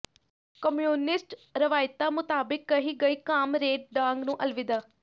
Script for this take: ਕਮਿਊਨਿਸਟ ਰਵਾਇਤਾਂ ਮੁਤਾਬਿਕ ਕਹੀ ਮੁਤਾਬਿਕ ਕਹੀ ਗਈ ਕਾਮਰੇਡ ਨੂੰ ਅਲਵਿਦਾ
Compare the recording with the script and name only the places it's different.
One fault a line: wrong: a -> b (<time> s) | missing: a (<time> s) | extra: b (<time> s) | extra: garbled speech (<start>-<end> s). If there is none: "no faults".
missing: ਮੁਤਾਬਿਕ ਕਹੀ (2.9 s)
extra: ਡਾਂਗ (3.9 s)